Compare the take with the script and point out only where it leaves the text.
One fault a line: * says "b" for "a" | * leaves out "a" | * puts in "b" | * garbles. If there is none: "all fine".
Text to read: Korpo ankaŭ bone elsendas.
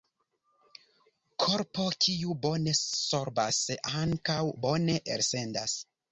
* puts in "kiu bone sorbas"